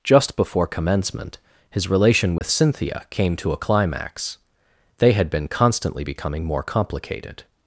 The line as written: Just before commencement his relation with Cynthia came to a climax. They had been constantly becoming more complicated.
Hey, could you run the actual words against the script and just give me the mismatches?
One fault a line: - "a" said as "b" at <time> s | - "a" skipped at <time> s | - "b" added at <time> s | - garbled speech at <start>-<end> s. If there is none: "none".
none